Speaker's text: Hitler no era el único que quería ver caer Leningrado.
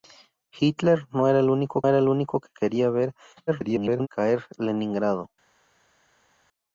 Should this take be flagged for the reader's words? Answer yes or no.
yes